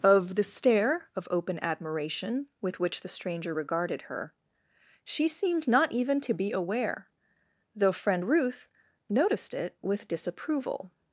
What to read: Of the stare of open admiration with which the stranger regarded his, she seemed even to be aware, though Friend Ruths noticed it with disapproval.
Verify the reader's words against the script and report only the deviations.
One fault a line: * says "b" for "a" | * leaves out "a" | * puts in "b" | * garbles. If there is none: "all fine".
* says "her" for "his"
* puts in "not"
* says "Ruth" for "Ruths"